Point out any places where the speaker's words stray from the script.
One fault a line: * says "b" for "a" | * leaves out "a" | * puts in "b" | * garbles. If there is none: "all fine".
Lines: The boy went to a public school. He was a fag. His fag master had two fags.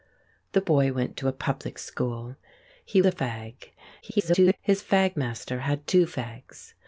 * leaves out "was"
* garbles